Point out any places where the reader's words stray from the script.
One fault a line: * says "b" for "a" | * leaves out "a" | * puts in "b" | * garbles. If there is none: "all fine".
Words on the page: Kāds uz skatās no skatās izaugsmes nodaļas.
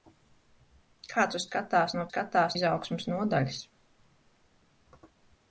all fine